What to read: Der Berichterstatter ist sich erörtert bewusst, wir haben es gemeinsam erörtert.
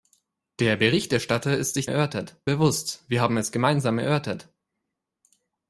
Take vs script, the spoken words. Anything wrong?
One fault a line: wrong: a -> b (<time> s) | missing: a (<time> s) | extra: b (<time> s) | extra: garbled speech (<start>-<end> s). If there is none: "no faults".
no faults